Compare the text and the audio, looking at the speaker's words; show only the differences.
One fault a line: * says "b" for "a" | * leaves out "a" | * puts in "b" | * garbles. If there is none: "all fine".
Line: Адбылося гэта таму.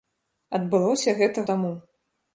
all fine